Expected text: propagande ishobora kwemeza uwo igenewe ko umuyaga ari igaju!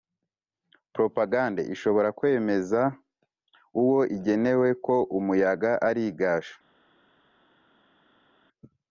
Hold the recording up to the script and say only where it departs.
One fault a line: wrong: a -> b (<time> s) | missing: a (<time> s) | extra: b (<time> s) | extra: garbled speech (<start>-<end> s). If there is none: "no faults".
no faults